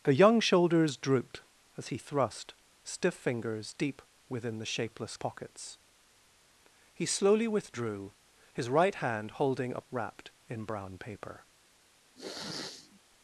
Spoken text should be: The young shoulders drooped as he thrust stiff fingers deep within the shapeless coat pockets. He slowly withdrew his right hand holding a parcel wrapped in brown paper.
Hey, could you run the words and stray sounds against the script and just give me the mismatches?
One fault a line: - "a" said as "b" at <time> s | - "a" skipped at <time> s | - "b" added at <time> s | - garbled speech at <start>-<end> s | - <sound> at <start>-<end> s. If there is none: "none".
- "coat" skipped at 5.2 s
- "parcel" skipped at 9.8 s
- sniff at 12.2-13.0 s